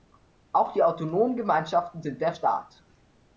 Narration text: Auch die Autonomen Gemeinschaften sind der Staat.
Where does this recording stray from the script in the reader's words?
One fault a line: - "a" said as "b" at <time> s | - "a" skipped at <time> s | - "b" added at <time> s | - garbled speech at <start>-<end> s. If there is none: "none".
none